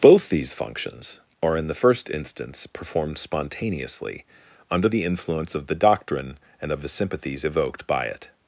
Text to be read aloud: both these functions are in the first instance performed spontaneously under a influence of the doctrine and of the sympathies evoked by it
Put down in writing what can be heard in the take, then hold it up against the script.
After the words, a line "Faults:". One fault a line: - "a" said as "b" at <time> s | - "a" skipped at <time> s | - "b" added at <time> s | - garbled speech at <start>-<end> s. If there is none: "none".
both these functions are in the first instance performed spontaneously under the influence of the doctrine and of the sympathies evoked by it
Faults:
- "a" said as "the" at 4.9 s